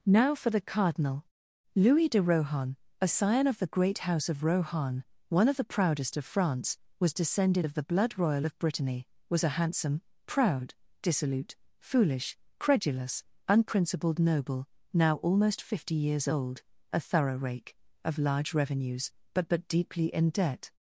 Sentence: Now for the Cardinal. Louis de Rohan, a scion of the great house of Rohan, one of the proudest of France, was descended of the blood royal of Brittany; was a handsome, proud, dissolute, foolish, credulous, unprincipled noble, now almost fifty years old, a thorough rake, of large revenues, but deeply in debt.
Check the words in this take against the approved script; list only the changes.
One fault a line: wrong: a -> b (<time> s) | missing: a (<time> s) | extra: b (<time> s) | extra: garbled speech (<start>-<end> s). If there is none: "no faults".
extra: but (19.5 s)